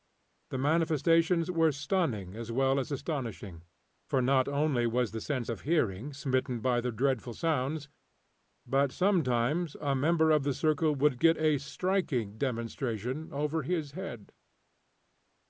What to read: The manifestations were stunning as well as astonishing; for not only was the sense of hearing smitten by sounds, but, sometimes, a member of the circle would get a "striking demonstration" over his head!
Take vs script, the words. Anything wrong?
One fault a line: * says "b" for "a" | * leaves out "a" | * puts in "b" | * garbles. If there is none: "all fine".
* puts in "the dreadful"